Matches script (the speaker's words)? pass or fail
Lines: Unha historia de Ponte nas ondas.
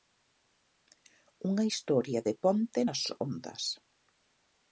pass